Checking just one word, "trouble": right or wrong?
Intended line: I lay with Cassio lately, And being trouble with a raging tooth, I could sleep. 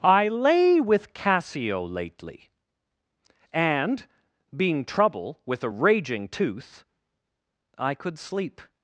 right